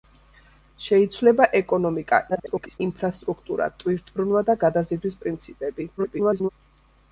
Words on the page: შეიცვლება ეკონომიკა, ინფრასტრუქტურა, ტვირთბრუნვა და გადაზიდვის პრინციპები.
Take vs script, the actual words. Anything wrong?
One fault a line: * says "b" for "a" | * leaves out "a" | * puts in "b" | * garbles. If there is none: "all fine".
* garbles
* garbles